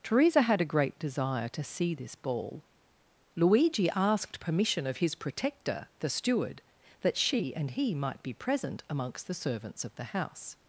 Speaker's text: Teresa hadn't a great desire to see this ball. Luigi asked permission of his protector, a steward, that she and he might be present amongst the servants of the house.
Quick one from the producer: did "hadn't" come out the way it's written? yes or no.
no